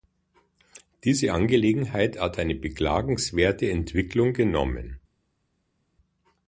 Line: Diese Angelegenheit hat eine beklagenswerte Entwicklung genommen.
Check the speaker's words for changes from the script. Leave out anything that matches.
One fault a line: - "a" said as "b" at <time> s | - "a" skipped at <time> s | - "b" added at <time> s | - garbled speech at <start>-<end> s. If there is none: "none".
none